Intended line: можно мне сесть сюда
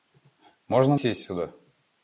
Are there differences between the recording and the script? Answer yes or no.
yes